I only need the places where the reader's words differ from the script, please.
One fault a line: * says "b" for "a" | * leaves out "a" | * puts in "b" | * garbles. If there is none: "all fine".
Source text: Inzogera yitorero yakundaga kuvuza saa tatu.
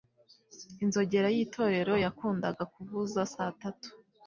all fine